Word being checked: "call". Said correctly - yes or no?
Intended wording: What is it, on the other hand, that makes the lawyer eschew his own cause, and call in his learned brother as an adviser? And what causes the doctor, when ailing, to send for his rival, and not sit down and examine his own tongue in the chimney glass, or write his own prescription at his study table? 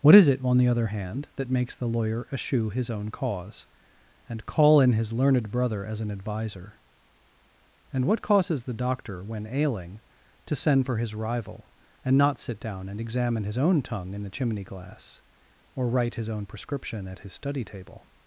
yes